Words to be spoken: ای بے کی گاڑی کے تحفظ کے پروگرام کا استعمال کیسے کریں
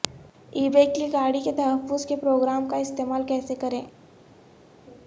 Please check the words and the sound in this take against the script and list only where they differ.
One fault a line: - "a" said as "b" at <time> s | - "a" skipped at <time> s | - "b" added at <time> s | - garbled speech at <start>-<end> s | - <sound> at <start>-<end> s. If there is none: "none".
none